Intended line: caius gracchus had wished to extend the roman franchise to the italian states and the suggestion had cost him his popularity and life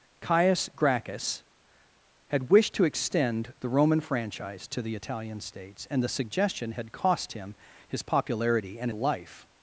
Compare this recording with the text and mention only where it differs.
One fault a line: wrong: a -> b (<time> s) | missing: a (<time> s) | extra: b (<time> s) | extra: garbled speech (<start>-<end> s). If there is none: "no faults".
no faults